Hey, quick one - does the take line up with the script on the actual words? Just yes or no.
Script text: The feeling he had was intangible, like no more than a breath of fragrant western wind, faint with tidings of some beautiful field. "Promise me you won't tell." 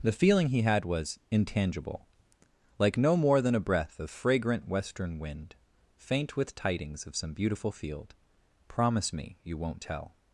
yes